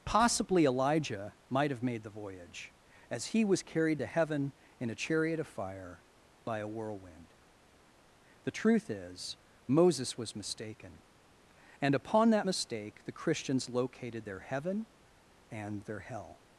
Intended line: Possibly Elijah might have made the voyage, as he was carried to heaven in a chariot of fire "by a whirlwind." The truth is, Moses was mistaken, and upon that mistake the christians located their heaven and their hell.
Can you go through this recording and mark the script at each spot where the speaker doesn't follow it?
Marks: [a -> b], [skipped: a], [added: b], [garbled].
Possibly Elijah might have made the voyage, as he was carried to heaven in a chariot of fire "by a whirlwind." The truth is, Moses was mistaken, and upon that mistake the christians located their heaven and their hell.